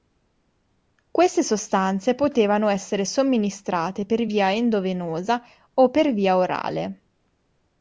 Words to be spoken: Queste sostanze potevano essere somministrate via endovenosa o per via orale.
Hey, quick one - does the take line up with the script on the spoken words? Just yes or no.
no